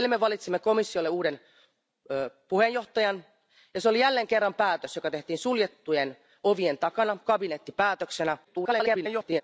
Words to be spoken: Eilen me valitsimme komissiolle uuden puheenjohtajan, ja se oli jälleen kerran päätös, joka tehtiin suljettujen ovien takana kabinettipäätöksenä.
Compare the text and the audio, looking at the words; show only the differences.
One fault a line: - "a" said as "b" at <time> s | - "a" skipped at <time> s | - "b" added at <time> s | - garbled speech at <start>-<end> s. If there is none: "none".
- garbled speech at 8.4-9.4 s